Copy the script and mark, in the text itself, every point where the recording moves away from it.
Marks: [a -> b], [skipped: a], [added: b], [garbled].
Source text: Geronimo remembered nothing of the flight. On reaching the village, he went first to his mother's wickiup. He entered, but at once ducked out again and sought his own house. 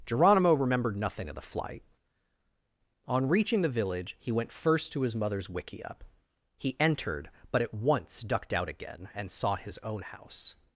Geronimo remembered nothing of the flight. On reaching the village, he went first to his mother's wickiup. He entered, but at once ducked out again and sought his own house.